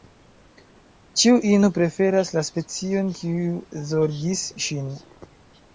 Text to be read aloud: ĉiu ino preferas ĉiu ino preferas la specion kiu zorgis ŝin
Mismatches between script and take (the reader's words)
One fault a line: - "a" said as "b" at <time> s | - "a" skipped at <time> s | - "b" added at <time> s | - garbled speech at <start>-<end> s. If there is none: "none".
- "ĉiu ino preferas" skipped at 2.3 s